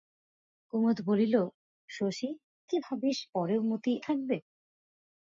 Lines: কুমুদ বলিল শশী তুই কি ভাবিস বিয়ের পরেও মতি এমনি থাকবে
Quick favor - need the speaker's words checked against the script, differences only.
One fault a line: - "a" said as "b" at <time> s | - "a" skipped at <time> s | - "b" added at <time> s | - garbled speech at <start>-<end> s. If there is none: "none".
- "তুই" skipped at 2.3 s
- "বিয়ের" skipped at 3.2 s
- "এমনি" skipped at 3.9 s